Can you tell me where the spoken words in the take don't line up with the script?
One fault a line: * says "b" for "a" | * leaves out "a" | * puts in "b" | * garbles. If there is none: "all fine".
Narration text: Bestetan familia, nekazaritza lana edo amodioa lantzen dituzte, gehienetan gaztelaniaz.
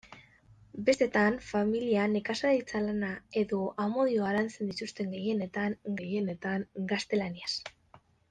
* puts in "gehienetan"